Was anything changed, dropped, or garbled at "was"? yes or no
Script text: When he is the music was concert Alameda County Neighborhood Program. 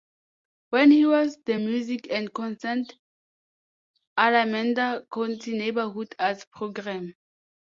yes